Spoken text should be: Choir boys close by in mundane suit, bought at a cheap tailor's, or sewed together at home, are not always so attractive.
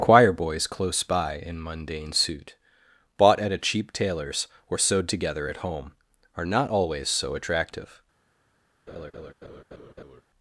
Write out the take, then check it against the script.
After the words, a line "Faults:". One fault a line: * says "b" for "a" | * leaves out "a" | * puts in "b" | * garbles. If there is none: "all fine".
Choir boys close by in mundane suit, bought at a cheap tailor's, or sewed together at home, are not always so attractive.
Faults:
all fine